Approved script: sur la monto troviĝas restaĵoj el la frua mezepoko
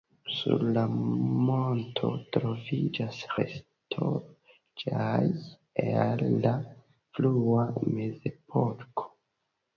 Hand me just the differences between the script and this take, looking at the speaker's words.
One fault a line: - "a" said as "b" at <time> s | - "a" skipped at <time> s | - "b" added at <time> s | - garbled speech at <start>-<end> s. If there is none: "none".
none